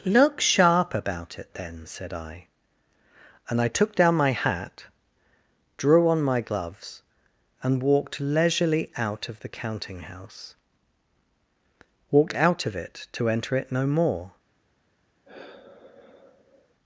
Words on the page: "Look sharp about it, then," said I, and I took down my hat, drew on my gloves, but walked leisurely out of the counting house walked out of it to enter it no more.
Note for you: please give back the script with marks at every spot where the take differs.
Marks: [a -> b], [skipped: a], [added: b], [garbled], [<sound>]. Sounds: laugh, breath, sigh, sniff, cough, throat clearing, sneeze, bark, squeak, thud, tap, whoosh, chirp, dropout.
"Look sharp about it, then," said I, and I took down my hat, drew on my gloves, [but -> and] walked leisurely out of the counting house walked out of it to enter it no more. [sigh]